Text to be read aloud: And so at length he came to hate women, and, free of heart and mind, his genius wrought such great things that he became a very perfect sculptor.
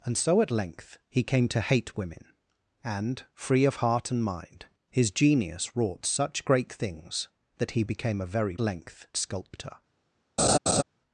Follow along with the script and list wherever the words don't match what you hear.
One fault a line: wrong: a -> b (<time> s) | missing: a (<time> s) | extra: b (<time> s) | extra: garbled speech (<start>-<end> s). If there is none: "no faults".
wrong: perfect -> length (8.6 s)